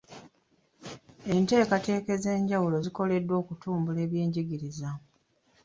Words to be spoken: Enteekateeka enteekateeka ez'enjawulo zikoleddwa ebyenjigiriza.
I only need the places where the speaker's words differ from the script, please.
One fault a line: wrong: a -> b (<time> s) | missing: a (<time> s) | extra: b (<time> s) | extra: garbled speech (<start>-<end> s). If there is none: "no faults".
missing: enteekateeka (2.1 s)
extra: okutumbula (3.4 s)